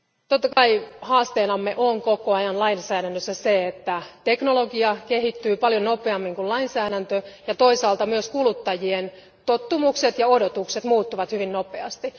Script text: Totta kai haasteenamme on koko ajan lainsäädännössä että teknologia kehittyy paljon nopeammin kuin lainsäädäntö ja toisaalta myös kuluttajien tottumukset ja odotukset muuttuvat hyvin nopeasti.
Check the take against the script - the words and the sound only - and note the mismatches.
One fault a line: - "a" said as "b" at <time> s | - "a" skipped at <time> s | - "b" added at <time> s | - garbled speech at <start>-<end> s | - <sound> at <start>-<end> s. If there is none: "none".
- dropout at 0.5-0.6 s
- "se" added at 3.3 s